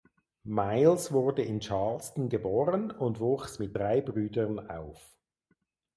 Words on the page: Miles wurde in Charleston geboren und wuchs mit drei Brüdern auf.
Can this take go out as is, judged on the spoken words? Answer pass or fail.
pass